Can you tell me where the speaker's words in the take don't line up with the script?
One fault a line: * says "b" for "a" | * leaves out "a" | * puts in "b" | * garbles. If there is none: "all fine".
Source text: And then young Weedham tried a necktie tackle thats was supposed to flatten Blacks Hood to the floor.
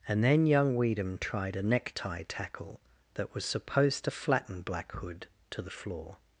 * says "that" for "thats"
* says "Black" for "Blacks"